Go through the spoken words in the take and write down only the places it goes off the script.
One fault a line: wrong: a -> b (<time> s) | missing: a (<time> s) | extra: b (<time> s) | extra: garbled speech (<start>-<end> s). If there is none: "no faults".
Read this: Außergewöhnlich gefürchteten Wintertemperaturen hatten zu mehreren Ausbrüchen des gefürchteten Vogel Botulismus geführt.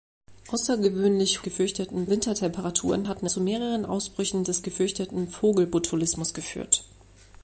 no faults